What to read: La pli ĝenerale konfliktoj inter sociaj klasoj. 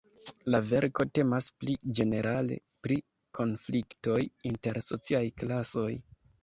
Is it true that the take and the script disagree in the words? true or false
true